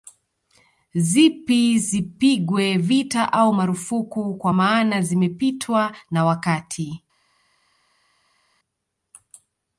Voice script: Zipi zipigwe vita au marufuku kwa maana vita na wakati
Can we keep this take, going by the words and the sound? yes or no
no